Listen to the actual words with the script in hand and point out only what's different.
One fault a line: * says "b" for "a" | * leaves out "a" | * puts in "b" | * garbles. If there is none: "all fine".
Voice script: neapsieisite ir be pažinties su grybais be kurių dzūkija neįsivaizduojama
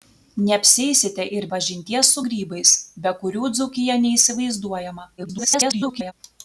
* leaves out "be"
* garbles